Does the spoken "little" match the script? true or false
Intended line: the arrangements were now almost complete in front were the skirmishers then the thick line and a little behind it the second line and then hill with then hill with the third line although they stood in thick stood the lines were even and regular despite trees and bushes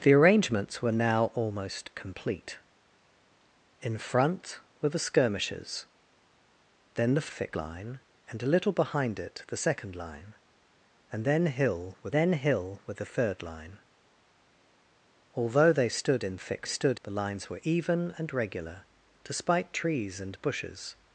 true